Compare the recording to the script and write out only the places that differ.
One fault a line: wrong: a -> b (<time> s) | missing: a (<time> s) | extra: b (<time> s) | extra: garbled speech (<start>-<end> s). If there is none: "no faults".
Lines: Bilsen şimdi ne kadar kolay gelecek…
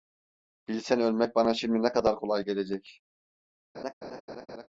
extra: ölmek bana (1.0 s)